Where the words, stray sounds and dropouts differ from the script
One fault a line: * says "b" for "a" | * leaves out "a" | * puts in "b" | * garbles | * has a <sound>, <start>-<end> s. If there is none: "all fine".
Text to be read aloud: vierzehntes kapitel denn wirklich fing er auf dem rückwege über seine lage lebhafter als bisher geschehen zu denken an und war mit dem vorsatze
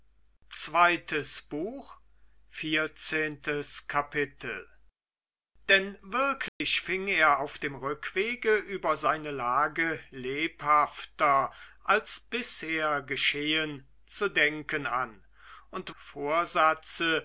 * has a dropout, 6.5-6.6 s
* leaves out "war mit dem"